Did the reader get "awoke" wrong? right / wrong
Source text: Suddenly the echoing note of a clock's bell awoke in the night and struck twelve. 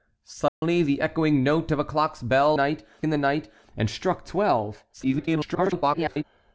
wrong